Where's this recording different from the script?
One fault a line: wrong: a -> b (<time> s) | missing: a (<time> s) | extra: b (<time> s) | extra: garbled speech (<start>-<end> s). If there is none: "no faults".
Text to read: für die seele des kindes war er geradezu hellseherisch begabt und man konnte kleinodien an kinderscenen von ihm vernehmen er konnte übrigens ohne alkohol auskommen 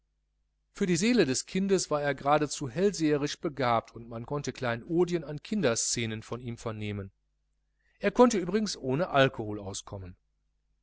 no faults